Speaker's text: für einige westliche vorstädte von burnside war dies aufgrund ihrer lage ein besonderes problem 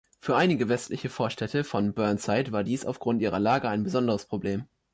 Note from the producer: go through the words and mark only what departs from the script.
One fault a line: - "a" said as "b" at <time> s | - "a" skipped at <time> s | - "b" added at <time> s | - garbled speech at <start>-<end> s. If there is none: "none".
none